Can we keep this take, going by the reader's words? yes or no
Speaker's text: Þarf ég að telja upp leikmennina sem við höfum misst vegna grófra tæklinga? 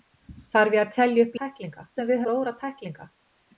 no